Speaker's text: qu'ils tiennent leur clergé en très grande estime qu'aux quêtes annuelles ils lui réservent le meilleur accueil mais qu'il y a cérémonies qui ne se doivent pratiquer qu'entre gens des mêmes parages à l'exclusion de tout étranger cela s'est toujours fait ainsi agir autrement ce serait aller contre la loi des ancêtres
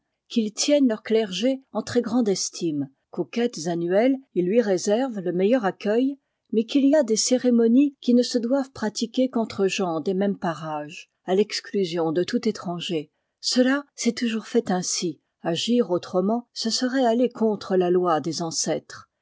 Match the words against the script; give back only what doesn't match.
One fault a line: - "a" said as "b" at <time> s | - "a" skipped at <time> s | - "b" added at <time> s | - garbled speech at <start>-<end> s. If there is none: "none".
- "des" added at 7.0 s